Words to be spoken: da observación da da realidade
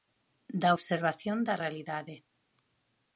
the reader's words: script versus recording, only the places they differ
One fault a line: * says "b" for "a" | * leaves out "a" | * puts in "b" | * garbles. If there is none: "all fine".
* leaves out "da"